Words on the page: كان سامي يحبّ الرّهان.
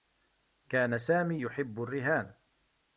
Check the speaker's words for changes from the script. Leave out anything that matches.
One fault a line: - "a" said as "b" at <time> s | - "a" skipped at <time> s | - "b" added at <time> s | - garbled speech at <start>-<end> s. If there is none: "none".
none